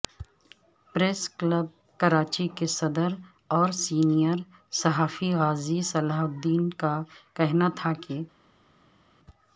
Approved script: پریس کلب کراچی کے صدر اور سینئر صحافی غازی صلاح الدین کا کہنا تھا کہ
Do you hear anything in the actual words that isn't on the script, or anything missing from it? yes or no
no